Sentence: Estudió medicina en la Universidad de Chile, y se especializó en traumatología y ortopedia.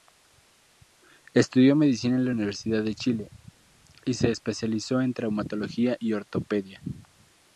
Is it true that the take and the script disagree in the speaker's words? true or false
false